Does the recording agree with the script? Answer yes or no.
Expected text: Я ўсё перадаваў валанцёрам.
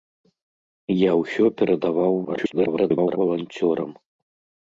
no